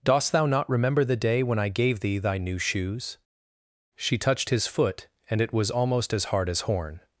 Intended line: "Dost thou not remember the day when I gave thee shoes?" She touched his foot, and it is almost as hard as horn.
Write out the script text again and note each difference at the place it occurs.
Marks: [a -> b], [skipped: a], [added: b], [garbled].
"Dost thou not remember the day when I gave thee [added: thy new] shoes?" She touched his foot, and it [is -> was] almost as hard as horn.